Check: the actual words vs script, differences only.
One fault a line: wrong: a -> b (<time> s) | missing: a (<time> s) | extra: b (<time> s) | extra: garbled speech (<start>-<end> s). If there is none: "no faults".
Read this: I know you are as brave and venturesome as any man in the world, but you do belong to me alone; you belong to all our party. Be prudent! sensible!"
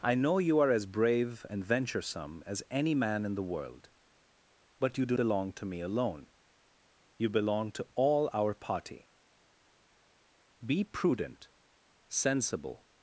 no faults